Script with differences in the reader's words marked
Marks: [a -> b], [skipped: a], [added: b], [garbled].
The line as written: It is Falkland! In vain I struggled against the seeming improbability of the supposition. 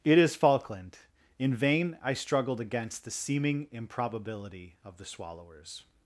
It is Falkland! In vain I struggled against the seeming improbability of the [supposition. -> swallowers]